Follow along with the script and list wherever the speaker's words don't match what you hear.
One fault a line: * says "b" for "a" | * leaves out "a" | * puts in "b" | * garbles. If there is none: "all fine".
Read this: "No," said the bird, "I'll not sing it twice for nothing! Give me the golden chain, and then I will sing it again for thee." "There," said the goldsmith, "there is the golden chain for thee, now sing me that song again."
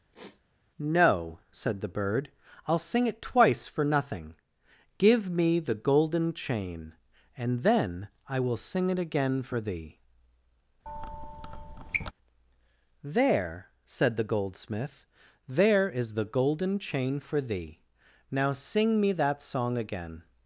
* leaves out "not"